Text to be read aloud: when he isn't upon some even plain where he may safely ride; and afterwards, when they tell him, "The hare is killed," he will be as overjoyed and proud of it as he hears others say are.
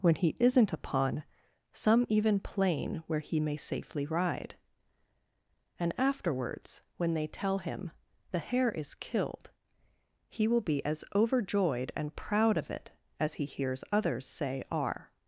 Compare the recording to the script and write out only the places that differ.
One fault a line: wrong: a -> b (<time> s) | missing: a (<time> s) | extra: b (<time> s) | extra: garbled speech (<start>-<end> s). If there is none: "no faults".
no faults